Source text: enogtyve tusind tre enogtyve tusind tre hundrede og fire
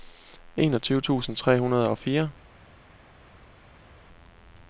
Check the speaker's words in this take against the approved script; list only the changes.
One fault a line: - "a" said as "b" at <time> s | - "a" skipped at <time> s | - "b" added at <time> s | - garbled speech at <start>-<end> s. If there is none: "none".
- "enogtyve tusind tre" skipped at 1.6 s